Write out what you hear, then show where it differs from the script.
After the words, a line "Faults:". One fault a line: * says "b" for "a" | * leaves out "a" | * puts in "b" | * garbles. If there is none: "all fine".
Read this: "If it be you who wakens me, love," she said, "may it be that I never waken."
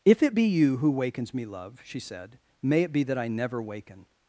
"If it be you who wakens me, love," she said, "may it be that I never waken."
Faults:
all fine